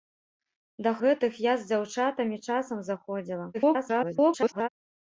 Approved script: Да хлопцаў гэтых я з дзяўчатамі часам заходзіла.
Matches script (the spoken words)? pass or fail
fail